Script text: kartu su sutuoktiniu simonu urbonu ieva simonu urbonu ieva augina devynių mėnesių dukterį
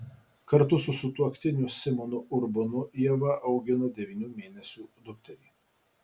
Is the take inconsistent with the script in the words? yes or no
yes